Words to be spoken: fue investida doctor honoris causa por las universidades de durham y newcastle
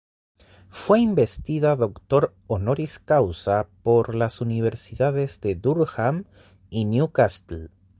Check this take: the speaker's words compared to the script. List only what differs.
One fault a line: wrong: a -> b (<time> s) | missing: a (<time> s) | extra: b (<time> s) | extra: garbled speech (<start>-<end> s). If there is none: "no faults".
no faults